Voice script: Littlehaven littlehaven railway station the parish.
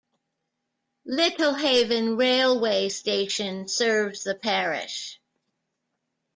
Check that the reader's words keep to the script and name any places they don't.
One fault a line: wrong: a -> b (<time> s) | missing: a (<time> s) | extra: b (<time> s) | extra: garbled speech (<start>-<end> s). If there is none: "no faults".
missing: littlehaven (2.2 s)
extra: serves (3.7 s)